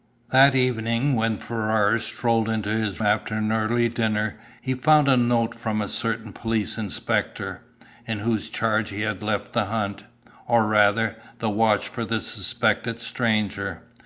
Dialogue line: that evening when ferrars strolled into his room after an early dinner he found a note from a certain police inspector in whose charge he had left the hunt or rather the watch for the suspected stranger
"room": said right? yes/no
no